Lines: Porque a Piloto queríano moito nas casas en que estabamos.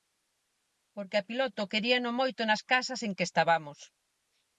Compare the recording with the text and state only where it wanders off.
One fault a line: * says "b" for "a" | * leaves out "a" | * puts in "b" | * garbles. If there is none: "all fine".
all fine